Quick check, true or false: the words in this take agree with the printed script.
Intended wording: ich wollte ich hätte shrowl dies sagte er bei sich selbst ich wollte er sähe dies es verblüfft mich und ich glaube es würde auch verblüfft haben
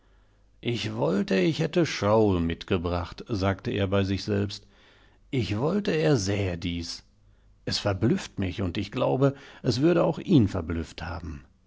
false